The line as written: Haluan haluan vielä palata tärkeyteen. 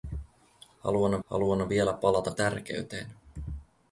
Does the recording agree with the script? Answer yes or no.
yes